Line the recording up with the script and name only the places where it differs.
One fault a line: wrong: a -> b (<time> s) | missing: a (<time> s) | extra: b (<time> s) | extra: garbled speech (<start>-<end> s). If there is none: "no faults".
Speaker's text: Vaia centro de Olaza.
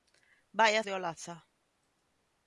missing: centro (0.8 s)